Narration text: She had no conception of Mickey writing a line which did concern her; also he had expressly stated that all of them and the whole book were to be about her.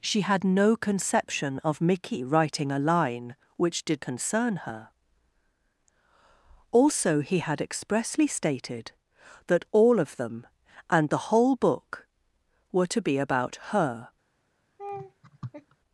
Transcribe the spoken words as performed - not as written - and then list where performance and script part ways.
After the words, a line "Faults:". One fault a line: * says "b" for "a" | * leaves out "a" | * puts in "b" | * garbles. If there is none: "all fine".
She had no conception of Mickey writing a line which did concern her; also he had expressly stated that all of them and the whole book were to be about her.
Faults:
all fine